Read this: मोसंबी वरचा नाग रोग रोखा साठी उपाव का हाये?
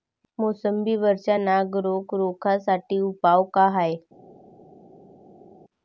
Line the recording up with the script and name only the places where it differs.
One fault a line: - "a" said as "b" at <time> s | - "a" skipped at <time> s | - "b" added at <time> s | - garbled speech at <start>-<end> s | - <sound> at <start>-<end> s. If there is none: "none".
none